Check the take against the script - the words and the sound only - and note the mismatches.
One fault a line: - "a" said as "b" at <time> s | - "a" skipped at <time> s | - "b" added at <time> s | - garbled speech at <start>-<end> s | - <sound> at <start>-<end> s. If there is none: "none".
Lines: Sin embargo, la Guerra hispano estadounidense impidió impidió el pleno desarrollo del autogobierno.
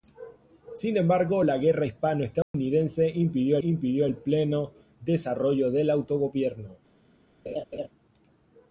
- dropout at 2.4-2.5 s
- laugh at 7.5-7.9 s